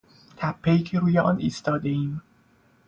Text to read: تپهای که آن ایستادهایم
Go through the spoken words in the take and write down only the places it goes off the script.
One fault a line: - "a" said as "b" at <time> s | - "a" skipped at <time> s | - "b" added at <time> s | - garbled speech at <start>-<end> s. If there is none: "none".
- "روی" added at 1.0 s